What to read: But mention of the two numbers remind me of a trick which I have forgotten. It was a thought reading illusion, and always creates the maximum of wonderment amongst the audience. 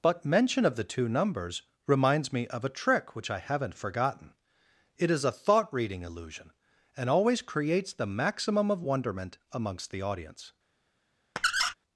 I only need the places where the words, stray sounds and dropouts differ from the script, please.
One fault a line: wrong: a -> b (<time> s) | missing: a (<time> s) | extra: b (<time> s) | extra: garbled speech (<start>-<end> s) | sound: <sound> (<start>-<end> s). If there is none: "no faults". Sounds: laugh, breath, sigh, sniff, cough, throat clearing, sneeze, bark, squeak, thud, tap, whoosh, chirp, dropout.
wrong: remind -> reminds (1.9 s)
wrong: have -> haven't (3.4 s)
wrong: was -> is (5.1 s)
sound: squeak (11.4-11.7 s)